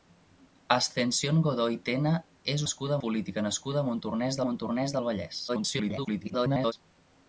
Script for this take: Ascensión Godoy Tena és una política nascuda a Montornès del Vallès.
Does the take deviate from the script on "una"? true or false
true